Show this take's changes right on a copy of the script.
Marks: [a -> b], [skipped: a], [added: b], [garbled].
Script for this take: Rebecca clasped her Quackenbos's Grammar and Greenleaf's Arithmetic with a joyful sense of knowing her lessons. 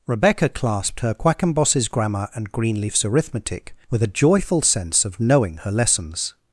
Rebecca clasped her Quackenbos's Grammar and Greenleaf's Arithmetic with a joyful sense of knowing her lessons.